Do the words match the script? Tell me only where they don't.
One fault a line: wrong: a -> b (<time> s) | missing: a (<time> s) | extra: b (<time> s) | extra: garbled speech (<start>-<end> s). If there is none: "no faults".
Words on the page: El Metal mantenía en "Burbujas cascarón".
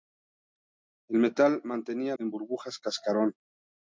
no faults